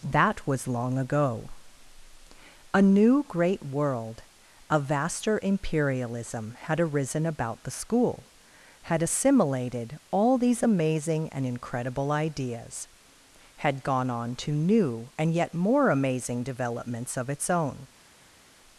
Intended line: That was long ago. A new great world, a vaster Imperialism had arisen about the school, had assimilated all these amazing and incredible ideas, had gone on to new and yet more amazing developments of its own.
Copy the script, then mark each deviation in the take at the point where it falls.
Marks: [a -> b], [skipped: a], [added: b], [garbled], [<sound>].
That was long ago. A new great world, a vaster Imperialism had arisen about the school, had assimilated all these amazing and incredible ideas, had gone on to new and yet more amazing developments of its own.